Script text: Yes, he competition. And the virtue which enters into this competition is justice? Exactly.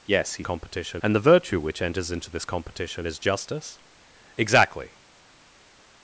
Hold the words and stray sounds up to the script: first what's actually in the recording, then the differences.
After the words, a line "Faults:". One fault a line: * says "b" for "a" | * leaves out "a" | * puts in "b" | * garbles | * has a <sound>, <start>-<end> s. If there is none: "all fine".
Yes, he competition. And the virtue which enters into this competition is justice? Exactly.
Faults:
all fine